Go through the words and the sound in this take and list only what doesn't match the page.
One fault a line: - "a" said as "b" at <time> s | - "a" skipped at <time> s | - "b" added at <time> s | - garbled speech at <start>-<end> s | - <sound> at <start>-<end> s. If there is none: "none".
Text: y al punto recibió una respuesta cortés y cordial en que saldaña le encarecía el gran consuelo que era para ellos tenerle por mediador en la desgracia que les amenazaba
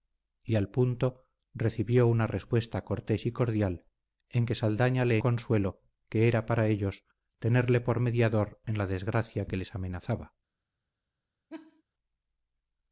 - "encarecía el gran" skipped at 5.2 s
- laugh at 11.5-11.8 s